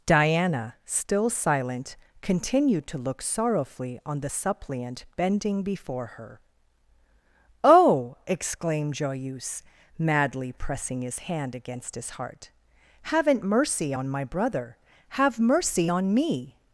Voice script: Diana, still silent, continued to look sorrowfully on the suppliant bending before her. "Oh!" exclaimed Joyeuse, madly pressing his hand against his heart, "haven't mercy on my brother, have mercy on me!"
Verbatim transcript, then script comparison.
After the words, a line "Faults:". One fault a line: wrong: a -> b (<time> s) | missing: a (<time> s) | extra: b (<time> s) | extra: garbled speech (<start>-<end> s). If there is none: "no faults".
Diana, still silent, continued to look sorrowfully on the suppliant bending before her. "Oh!" exclaimed Joyeuse, madly pressing his hand against his heart, "haven't mercy on my brother, have mercy on me!"
Faults:
no faults